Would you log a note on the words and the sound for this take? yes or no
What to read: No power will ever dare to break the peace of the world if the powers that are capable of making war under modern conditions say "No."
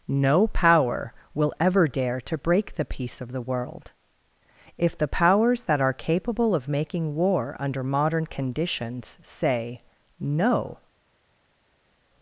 no